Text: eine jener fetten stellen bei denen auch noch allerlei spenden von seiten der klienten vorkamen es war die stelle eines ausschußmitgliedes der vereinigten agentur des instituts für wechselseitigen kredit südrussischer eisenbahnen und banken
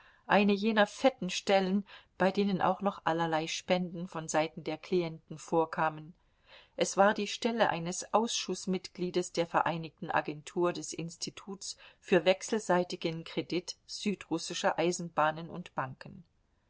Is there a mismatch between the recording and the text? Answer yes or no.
no